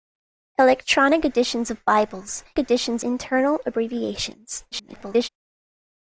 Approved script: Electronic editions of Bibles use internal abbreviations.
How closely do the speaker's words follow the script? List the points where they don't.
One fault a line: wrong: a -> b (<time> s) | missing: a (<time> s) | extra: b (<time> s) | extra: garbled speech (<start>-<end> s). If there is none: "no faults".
wrong: use -> editions (2.6 s)
extra: garbled speech (4.7-5.3 s)